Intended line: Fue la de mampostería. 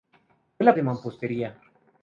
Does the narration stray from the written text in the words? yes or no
no